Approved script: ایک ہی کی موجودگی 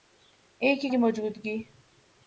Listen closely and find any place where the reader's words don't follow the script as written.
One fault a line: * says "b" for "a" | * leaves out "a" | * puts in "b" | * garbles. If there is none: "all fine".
all fine